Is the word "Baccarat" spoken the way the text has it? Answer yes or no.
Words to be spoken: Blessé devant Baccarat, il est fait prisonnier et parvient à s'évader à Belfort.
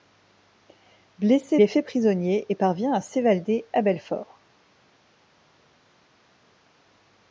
no